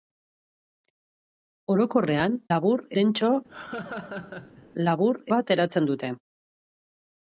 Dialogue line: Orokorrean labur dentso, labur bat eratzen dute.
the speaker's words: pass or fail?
pass